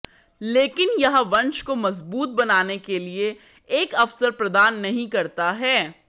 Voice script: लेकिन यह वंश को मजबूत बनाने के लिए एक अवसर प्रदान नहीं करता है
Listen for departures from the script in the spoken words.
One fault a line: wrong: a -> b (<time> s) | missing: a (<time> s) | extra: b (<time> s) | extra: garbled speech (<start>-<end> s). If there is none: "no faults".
no faults